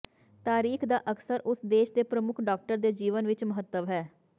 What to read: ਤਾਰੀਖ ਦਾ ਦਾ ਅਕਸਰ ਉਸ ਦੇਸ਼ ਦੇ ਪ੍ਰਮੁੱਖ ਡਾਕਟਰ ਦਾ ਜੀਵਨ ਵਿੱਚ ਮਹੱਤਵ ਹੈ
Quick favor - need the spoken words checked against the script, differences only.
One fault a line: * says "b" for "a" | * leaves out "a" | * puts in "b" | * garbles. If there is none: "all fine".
* leaves out "ਦਾ"
* says "ਦੇ" for "ਦਾ"